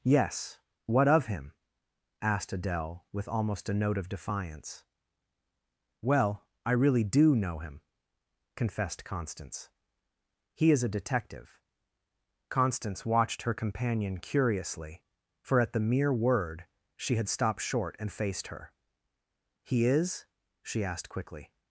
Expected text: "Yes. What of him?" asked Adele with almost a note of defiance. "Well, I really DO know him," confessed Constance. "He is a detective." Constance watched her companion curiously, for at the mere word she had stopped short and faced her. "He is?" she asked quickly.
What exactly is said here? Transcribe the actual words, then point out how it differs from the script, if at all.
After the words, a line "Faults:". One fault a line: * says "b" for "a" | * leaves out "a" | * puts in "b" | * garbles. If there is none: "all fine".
"Yes. What of him?" asked Adele with almost a note of defiance. "Well, I really DO know him," confessed Constance. "He is a detective." Constance watched her companion curiously, for at the mere word she had stopped short and faced her. "He is?" she asked quickly.
Faults:
all fine